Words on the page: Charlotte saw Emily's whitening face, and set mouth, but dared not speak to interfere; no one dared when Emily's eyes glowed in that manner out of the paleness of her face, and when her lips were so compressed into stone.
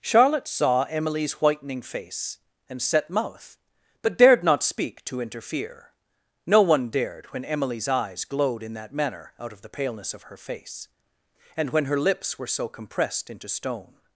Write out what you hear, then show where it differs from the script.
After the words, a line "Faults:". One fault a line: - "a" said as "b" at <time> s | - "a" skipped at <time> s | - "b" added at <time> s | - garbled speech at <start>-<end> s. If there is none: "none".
Charlotte saw Emily's whitening face, and set mouth, but dared not speak to interfere; no one dared when Emily's eyes glowed in that manner out of the paleness of her face, and when her lips were so compressed into stone.
Faults:
none